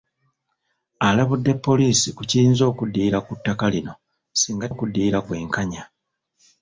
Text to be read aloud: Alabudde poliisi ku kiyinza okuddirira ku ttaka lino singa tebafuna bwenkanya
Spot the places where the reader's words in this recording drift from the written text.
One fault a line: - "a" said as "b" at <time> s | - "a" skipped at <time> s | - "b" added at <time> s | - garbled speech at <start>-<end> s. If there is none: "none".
- "tebafuna" said as "okuddirira" at 4.7 s